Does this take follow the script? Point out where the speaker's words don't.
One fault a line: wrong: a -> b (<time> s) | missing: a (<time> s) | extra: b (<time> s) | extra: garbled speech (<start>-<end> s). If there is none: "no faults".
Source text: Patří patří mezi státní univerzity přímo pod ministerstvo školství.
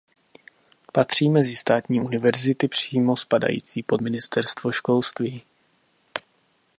missing: patří (1.3 s)
extra: spadající (3.2 s)